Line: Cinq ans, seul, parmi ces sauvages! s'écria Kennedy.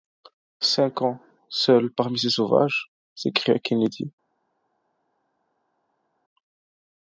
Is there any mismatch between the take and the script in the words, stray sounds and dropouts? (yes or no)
no